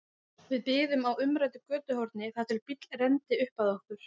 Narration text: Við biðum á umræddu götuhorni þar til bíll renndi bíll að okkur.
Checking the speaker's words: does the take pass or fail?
fail